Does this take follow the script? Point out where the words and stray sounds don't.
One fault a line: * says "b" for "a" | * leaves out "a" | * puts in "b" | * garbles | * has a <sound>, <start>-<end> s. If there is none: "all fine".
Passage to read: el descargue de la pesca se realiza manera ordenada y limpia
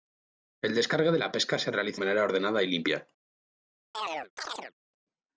* has a chirp, 3.9-4.7 s